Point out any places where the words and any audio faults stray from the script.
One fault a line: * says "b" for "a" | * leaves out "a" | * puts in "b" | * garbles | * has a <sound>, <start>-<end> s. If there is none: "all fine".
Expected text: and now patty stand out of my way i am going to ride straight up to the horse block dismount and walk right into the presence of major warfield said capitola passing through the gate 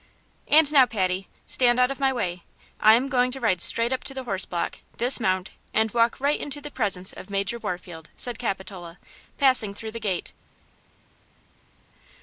all fine